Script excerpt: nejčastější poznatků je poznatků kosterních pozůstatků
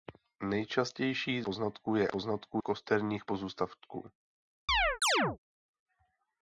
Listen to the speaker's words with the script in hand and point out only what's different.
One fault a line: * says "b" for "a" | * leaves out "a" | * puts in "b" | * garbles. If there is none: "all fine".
all fine